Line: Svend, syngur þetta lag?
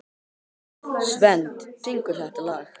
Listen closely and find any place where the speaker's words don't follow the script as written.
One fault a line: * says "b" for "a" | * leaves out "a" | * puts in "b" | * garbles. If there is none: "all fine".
all fine